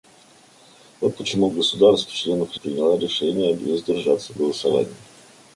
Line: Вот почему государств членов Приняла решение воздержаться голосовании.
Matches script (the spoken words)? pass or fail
pass